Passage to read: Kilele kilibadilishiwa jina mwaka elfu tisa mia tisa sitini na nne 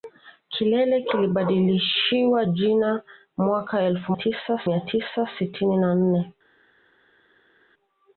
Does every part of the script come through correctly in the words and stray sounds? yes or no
yes